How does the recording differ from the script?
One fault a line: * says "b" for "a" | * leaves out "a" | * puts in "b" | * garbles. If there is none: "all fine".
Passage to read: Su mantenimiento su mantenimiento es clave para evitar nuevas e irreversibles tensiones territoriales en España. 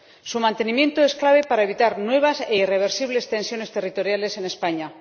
* leaves out "su mantenimiento"